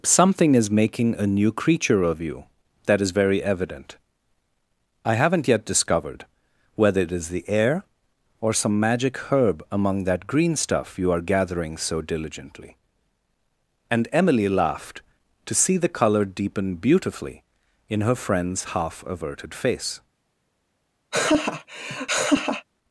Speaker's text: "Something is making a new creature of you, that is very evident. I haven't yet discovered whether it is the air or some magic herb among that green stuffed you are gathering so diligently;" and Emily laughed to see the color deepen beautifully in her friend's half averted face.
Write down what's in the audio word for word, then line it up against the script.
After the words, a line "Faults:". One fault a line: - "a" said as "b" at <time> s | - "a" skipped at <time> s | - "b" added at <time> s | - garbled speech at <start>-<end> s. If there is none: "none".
"Something is making a new creature of you, that is very evident. I haven't yet discovered whether it is the air or some magic herb among that green stuff you are gathering so diligently;" and Emily laughed to see the color deepen beautifully in her friend's half averted face.
Faults:
- "stuffed" said as "stuff" at 10.6 s